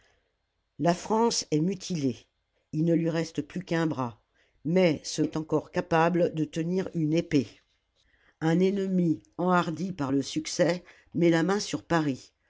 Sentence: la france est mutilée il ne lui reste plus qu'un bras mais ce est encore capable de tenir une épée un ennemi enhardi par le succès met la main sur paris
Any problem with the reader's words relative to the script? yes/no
no